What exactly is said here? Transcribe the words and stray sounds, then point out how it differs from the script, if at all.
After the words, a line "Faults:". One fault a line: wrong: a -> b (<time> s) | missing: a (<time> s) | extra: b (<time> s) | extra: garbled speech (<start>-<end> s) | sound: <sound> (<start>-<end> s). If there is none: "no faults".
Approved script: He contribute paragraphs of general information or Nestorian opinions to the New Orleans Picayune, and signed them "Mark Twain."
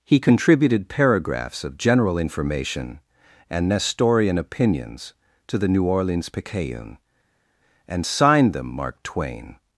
He contributed paragraphs of general information and Nestorian opinions to the New Orleans Picayune, and signed them "Mark Twain."
Faults:
wrong: contribute -> contributed (0.2 s)
wrong: or -> and (3.5 s)